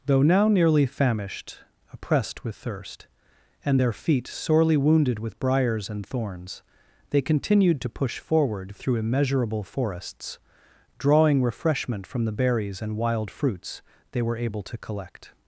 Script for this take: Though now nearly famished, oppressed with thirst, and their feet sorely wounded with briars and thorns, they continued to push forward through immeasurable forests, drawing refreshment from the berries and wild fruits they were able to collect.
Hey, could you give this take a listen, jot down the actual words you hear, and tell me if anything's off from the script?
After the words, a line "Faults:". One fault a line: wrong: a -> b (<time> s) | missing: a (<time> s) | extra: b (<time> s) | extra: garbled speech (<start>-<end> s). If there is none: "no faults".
Though now nearly famished, oppressed with thirst, and their feet sorely wounded with briars and thorns, they continued to push forward through immeasurable forests, drawing refreshment from the berries and wild fruits they were able to collect.
Faults:
no faults